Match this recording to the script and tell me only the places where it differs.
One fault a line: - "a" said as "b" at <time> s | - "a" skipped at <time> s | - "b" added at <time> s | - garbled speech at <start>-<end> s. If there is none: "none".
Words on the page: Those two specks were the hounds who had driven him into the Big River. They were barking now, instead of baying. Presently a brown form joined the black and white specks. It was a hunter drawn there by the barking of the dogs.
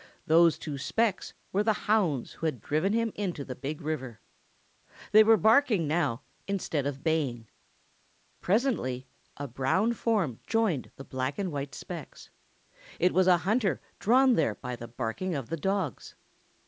none